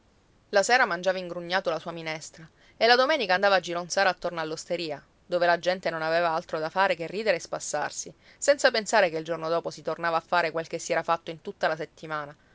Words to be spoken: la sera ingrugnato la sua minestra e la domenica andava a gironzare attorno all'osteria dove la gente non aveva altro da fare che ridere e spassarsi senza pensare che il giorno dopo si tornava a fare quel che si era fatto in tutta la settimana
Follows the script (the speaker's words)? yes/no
no